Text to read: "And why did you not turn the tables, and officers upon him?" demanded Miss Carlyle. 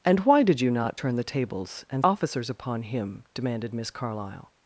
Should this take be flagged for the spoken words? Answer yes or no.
no